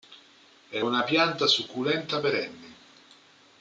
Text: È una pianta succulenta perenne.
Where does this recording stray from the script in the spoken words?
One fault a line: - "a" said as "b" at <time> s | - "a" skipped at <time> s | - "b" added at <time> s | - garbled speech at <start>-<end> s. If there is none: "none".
none